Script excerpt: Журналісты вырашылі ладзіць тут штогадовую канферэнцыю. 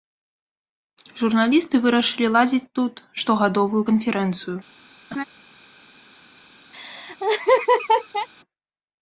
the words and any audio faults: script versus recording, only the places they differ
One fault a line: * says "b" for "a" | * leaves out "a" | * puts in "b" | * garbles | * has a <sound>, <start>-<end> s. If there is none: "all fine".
* has a laugh, 5.1-5.2 s
* has a laugh, 6.7-8.3 s